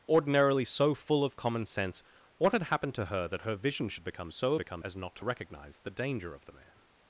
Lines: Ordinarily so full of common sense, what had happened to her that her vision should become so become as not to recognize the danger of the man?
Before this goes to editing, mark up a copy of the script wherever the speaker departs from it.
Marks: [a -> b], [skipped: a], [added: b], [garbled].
Ordinarily so full of common sense, what had happened to her that her vision should become so become as not to recognize the danger of the man?